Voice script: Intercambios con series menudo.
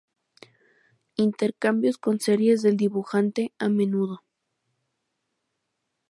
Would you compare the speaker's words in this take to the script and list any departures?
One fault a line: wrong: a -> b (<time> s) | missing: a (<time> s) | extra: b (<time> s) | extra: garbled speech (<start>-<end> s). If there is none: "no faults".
extra: del dibujante a (2.6 s)